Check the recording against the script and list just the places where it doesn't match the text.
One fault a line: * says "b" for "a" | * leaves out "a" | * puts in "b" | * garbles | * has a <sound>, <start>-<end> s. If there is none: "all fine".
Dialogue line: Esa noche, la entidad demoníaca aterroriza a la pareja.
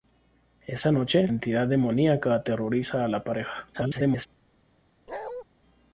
* leaves out "la"
* garbles
* has a bark, 5.1-5.4 s